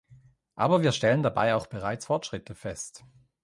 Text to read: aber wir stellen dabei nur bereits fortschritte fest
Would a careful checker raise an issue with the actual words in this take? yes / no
yes